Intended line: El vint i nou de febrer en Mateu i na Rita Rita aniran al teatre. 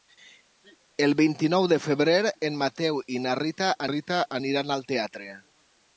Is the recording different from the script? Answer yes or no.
no